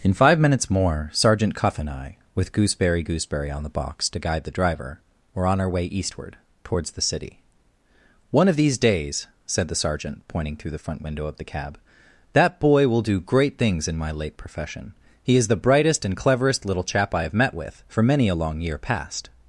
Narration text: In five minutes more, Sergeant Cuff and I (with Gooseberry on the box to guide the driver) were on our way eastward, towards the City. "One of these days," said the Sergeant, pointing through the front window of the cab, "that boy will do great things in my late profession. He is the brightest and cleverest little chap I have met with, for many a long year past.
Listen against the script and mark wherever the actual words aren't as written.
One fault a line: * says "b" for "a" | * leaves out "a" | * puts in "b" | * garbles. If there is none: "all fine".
* puts in "Gooseberry"